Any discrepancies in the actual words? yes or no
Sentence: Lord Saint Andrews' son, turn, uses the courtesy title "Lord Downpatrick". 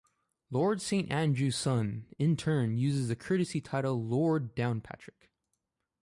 yes